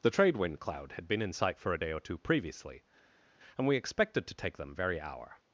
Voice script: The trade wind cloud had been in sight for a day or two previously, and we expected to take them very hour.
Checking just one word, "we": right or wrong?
right